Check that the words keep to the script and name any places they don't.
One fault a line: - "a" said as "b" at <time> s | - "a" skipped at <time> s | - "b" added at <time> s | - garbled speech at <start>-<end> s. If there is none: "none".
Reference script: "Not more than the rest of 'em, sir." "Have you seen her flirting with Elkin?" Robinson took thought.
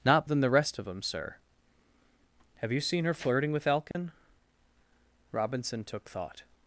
- "more" skipped at 0.3 s